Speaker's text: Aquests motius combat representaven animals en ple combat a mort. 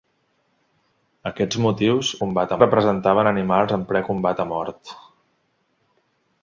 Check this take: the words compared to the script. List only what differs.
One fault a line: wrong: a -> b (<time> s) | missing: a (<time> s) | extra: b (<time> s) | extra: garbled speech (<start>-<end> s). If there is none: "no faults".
no faults